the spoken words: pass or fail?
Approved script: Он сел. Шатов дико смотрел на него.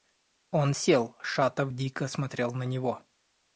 pass